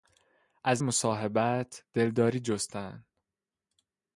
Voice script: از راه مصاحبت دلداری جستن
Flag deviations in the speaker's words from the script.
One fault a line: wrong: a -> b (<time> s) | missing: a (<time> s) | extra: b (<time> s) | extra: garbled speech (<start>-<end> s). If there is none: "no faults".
missing: راه (0.8 s)